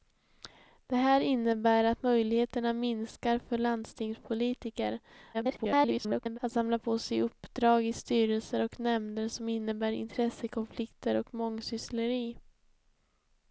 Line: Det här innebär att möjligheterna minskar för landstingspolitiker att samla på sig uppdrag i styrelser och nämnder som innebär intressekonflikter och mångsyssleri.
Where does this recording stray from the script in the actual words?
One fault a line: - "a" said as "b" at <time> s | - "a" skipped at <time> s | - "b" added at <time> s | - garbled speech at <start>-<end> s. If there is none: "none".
- garbled speech at 5.3-6.4 s